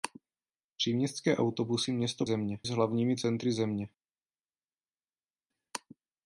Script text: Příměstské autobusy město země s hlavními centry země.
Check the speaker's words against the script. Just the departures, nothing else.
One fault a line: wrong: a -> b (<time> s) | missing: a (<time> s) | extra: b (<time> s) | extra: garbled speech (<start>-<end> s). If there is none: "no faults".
no faults